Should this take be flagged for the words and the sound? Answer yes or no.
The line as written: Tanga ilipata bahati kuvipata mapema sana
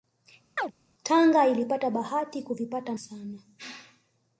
yes